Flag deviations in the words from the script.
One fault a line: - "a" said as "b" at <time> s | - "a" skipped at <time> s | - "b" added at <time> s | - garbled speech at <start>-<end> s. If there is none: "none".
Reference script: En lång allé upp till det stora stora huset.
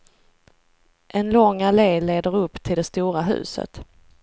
- "leder" added at 2.0 s
- "stora" skipped at 3.2 s